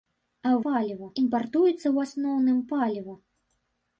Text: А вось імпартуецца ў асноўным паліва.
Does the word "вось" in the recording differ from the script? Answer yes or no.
yes